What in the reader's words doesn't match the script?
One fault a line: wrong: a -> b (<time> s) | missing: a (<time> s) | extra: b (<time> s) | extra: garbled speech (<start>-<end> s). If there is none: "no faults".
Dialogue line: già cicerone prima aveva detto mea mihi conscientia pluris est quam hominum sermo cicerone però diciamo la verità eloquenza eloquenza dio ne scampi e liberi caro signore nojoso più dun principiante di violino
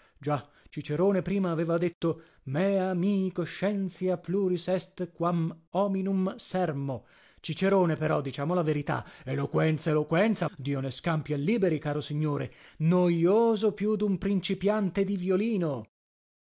no faults